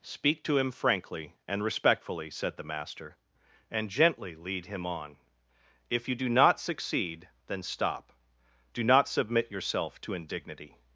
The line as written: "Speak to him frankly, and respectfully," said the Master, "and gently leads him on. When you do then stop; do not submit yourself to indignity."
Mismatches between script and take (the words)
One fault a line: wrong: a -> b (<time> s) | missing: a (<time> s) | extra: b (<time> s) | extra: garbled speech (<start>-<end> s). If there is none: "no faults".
wrong: leads -> lead (4.3 s)
wrong: When -> If (5.9 s)
extra: not succeed (6.3 s)